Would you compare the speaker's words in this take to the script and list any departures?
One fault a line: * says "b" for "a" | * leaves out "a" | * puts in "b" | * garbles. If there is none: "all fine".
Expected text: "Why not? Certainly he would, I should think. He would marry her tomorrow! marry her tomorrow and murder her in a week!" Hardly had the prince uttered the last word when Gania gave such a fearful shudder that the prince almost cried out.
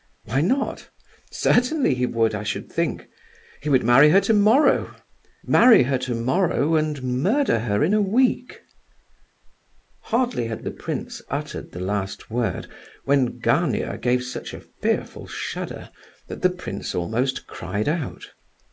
all fine